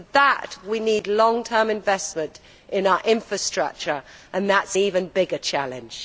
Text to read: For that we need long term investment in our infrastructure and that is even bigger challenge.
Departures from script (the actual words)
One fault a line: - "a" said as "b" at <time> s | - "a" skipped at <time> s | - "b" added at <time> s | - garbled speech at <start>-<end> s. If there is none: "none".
none